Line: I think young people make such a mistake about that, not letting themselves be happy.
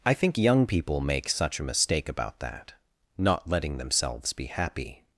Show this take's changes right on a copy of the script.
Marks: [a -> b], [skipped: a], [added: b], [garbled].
I think young people make such a mistake about that, not letting themselves be happy.